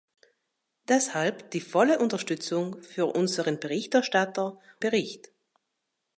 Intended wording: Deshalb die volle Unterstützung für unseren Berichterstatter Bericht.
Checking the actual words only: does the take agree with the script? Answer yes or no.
yes